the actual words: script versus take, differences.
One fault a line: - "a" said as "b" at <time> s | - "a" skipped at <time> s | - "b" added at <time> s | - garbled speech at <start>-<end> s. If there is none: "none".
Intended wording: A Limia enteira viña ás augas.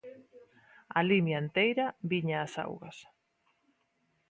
none